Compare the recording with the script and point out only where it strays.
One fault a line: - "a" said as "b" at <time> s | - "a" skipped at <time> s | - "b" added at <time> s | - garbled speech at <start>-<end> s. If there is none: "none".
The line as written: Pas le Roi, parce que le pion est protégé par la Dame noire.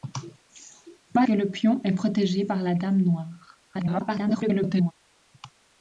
- "le Roi parce" skipped at 1.3 s
- garbled speech at 3.7-4.9 s